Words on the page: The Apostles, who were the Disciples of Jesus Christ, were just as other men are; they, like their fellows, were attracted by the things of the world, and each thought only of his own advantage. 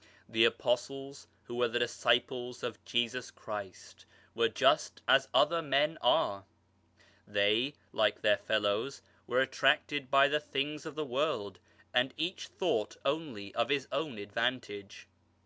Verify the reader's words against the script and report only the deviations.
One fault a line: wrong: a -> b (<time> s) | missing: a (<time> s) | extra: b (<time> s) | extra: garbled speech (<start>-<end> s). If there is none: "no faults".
no faults